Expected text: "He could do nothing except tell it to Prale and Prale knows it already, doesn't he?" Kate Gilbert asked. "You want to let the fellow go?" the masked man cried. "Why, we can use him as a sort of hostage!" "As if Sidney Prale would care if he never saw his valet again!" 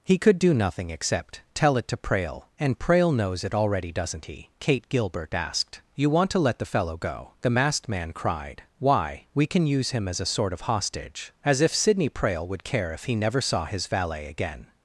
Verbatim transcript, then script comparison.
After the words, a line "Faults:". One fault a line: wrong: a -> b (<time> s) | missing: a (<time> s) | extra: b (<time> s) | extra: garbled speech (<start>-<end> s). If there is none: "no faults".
"He could do nothing except tell it to Prale and Prale knows it already, doesn't he?" Kate Gilbert asked. "You want to let the fellow go?" the masked man cried. "Why, we can use him as a sort of hostage!" "As if Sidney Prale would care if he never saw his valet again!"
Faults:
no faults